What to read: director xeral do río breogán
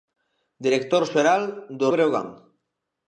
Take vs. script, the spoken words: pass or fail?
fail